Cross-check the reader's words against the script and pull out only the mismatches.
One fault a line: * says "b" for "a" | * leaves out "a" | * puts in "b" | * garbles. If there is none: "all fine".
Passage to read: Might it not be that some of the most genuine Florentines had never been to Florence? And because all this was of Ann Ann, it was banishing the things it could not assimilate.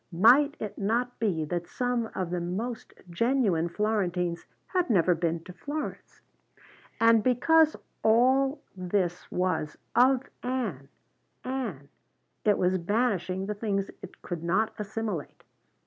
all fine